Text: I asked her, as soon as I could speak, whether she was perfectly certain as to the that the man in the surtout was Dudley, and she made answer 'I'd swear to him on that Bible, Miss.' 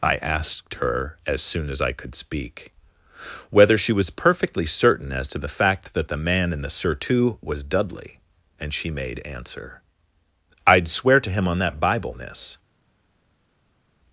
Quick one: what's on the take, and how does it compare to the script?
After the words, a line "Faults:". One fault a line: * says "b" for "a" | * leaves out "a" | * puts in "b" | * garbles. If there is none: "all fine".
I asked her, as soon as I could speak, whether she was perfectly certain as to the fact that the man in the surtout was Dudley, and she made answer 'I'd swear to him on that Bible, Miss.'
Faults:
* puts in "fact"